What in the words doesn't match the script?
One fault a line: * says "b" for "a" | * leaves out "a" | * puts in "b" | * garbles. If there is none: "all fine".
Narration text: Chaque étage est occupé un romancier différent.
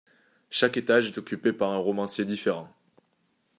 * puts in "par"